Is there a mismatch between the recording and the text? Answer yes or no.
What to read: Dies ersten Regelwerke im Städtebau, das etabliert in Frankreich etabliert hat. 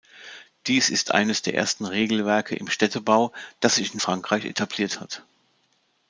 yes